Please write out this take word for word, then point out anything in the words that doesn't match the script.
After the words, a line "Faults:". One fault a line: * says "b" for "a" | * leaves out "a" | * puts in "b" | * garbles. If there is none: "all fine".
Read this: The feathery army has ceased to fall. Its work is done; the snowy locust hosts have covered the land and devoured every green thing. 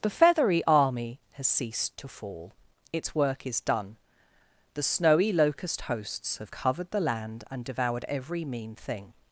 The feathery army has ceased to fall. Its work is done; the snowy locust hosts have covered the land and devoured every mean thing.
Faults:
* says "mean" for "green"